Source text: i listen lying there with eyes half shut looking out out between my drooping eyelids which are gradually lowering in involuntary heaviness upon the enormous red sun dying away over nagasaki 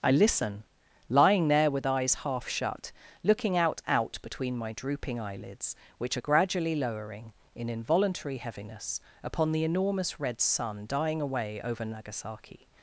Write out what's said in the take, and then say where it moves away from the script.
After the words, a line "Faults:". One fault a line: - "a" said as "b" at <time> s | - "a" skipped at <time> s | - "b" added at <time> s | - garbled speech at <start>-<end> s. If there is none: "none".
i listen lying there with eyes half shut looking out out between my drooping eyelids which are gradually lowering in involuntary heaviness upon the enormous red sun dying away over nagasaki
Faults:
none